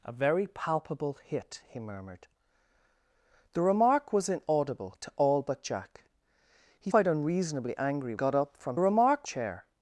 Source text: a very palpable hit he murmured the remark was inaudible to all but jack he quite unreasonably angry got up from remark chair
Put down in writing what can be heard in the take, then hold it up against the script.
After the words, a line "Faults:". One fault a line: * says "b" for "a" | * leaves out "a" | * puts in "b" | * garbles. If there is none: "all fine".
a very palpable hit he murmured the remark was inaudible to all but jack he quite unreasonably angry got up from remark chair
Faults:
all fine